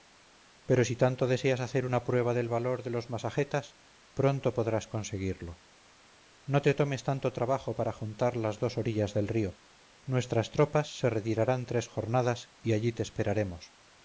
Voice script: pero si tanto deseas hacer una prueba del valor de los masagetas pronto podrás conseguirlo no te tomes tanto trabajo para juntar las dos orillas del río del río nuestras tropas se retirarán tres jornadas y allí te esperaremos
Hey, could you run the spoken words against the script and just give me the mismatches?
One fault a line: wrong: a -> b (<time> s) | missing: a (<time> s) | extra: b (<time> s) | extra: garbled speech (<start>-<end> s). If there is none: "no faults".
missing: del río (9.6 s)